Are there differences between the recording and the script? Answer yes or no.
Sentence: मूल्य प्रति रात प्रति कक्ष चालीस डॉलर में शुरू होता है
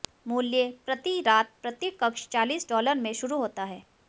no